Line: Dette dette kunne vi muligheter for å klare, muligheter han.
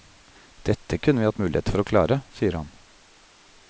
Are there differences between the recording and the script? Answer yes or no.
yes